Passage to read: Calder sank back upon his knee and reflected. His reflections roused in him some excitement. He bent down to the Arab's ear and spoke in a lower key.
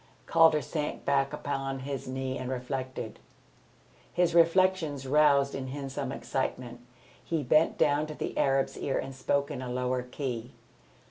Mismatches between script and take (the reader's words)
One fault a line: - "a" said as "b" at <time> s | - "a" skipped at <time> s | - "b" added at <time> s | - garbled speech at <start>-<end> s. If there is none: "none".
none